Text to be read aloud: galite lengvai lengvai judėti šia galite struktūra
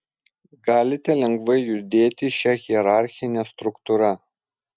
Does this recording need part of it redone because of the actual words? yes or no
yes